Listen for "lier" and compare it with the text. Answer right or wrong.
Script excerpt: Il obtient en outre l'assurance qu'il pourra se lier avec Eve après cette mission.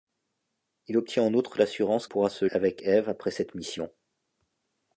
wrong